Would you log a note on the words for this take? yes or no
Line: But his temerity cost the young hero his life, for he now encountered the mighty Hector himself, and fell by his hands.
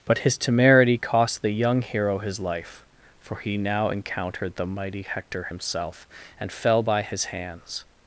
no